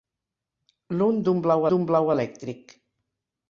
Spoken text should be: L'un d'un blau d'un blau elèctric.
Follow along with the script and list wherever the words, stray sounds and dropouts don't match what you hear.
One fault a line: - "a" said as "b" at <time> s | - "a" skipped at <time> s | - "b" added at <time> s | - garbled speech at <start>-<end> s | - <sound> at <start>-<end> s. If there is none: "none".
none